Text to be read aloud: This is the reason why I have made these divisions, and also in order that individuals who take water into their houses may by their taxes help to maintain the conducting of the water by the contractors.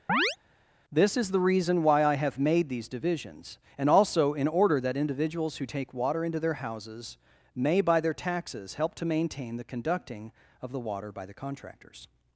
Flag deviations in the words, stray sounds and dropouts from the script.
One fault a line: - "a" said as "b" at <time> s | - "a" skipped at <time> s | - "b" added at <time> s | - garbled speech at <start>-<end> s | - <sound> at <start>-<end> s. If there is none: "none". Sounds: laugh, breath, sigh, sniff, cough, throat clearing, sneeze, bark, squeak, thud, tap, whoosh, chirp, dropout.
- chirp at 0.1-0.4 s